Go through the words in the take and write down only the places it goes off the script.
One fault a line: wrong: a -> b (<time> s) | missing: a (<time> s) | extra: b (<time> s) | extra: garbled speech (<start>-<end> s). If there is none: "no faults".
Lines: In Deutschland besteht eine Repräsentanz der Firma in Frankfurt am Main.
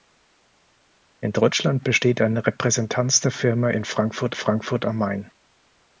extra: Frankfurt (4.3 s)